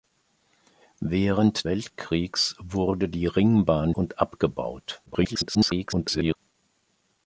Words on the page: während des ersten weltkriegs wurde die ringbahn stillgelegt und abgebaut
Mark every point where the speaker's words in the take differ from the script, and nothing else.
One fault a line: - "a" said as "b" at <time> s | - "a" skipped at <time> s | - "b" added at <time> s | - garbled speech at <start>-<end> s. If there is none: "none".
- "des ersten" skipped at 1.7 s
- "stillgelegt" skipped at 3.9 s
- garbled speech at 5.1-6.4 s